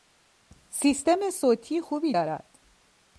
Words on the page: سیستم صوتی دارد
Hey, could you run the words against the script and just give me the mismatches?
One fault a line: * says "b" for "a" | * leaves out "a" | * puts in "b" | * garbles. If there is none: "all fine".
* puts in "خوبی"